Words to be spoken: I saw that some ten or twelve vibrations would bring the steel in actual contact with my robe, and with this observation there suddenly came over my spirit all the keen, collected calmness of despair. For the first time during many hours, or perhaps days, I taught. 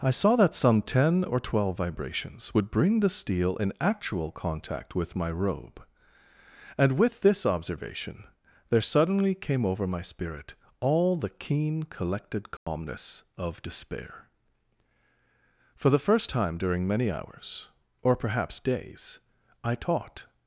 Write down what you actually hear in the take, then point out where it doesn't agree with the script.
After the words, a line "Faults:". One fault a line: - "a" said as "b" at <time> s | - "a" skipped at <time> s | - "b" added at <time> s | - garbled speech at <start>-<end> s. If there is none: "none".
I saw that some ten or twelve vibrations would bring the steel in actual contact with my robe, and with this observation there suddenly came over my spirit all the keen, collected calmness of despair. For the first time during many hours, or perhaps days, I taught.
Faults:
none